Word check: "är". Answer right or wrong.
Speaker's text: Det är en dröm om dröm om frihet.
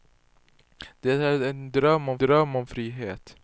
right